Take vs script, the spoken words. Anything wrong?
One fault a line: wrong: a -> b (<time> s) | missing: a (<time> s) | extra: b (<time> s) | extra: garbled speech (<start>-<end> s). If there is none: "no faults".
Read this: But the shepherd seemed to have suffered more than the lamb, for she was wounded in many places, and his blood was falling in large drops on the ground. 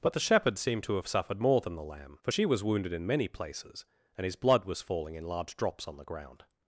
no faults